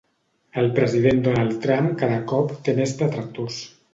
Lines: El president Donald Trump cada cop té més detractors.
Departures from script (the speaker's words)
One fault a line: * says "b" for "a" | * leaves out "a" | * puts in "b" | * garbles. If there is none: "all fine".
all fine